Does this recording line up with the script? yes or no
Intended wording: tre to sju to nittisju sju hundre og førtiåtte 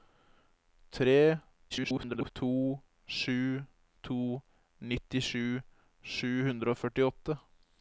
no